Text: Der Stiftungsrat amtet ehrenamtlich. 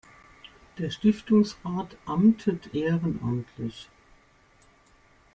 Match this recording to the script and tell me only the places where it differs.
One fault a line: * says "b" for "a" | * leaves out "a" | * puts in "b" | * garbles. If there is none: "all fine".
all fine